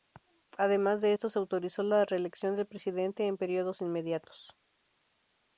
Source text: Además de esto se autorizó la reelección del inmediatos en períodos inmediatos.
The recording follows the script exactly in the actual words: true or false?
false